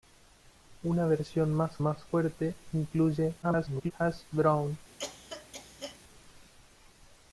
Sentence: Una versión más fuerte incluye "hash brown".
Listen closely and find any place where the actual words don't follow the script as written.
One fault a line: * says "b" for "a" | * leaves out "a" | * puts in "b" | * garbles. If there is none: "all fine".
* puts in "más"
* garbles